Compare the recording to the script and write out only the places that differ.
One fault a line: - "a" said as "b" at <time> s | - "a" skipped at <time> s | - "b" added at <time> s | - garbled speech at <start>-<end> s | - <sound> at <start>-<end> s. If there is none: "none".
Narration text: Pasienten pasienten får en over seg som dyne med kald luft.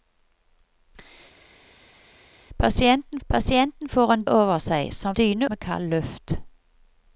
none